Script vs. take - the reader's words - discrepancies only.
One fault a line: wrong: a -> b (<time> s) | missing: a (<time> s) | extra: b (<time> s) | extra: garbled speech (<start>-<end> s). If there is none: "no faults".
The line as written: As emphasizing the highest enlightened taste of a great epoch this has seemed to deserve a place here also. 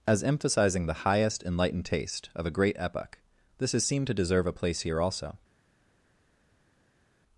no faults